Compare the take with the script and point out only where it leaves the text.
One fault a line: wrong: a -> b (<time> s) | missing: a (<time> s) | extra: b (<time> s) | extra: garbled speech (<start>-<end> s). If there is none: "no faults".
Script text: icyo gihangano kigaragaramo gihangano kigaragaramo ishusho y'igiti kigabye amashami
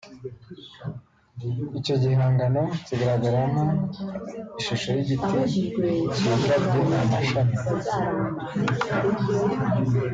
missing: gihangano kigaragaramo (3.6 s)